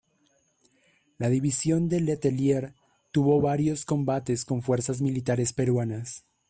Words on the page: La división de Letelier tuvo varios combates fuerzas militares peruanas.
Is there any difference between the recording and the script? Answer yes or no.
yes